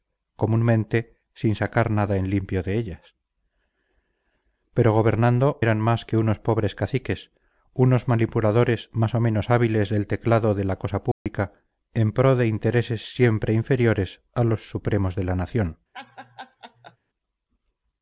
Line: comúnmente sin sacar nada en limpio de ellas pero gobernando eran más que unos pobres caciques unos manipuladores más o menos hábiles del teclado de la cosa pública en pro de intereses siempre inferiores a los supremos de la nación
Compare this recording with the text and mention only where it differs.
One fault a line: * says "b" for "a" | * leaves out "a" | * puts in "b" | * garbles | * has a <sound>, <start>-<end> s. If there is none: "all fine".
* has a dropout, 11.1-11.3 s
* has a laugh, 15.9-17.0 s